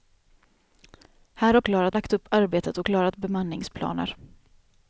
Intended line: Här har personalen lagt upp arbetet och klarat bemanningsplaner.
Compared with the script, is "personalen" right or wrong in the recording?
wrong